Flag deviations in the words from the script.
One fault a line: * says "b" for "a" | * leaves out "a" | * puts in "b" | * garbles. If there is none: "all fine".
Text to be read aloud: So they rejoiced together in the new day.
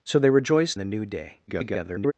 * leaves out "together in"
* garbles